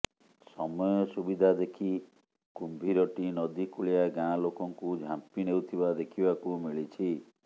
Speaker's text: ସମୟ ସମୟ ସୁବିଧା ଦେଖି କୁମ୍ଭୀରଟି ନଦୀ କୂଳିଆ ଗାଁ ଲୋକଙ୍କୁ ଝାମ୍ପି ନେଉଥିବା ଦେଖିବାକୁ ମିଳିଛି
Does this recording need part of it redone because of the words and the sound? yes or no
yes